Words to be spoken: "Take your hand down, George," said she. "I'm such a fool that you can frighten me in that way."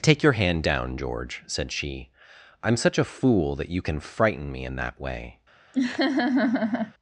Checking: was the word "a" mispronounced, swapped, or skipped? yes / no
no